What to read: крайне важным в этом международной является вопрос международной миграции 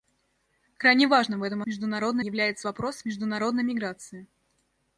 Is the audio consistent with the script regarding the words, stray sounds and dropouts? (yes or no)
yes